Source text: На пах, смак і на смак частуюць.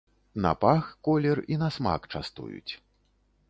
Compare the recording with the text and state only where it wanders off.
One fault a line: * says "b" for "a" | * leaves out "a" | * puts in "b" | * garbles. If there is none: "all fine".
* says "колер" for "смак"